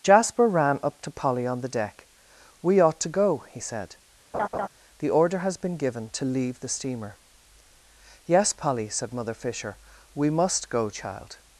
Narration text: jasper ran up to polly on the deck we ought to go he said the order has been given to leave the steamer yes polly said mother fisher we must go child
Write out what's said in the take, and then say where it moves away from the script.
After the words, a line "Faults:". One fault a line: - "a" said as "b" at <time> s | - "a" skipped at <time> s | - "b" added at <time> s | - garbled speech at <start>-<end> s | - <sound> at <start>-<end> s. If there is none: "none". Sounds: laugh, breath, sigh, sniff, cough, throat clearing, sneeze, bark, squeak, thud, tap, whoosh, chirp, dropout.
jasper ran up to polly on the deck we ought to go he said the order has been given to leave the steamer yes polly said mother fisher we must go child
Faults:
- laugh at 4.3-4.7 s